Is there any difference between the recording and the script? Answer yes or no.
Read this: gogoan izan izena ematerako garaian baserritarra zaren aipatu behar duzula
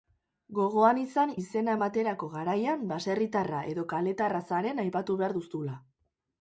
yes